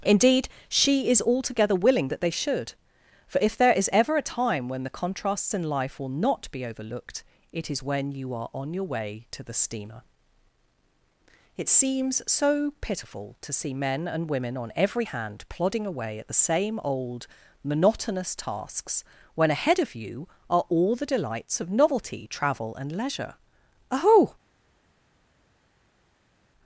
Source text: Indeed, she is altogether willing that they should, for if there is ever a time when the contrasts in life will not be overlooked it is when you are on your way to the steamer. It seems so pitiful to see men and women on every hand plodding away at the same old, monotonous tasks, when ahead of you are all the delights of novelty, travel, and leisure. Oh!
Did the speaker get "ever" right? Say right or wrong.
right